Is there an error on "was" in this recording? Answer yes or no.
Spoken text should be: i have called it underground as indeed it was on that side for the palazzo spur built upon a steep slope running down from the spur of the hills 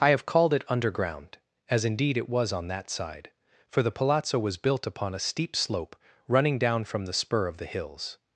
no